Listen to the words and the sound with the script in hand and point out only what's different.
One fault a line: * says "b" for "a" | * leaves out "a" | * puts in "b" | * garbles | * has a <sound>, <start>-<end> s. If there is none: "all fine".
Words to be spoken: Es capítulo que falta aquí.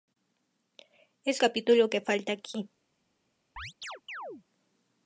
* has a chirp, 3.6-4.4 s